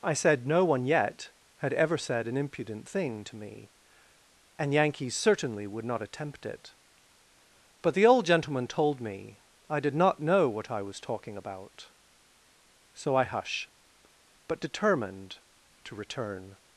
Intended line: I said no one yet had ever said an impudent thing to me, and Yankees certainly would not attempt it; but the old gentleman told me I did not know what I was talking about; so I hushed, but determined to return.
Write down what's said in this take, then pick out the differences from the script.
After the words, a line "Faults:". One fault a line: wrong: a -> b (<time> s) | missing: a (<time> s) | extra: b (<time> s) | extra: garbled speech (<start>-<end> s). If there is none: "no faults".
I said no one yet had ever said an impudent thing to me, and Yankees certainly would not attempt it; but the old gentleman told me I did not know what I was talking about; so I hush, but determined to return.
Faults:
wrong: hushed -> hush (13.2 s)